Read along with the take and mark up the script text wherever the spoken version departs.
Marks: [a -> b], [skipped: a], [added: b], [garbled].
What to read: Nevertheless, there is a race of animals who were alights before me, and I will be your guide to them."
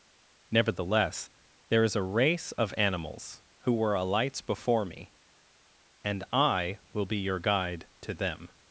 Nevertheless, there is a race of animals who were alights before me, and I will be your guide to them."